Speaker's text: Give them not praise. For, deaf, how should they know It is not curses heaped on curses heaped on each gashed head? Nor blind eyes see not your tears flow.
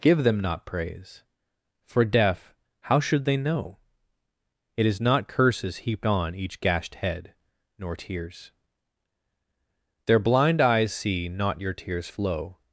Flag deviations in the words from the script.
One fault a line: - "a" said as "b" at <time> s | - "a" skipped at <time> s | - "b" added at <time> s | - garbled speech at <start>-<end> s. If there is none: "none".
- "curses heaped on" skipped at 6.3 s
- "tears Their" added at 8.0 s